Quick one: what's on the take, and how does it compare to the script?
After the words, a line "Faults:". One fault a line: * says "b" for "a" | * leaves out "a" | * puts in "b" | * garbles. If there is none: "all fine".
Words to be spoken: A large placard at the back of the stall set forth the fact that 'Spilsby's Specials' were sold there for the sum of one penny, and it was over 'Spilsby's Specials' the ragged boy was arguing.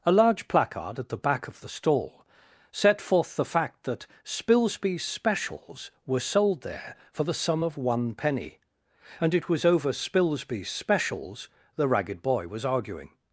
A large placard at the back of the stall set forth the fact that 'Spilsby's Specials' were sold there for the sum of one penny, and it was over 'Spilsby's Specials' the ragged boy was arguing.
Faults:
all fine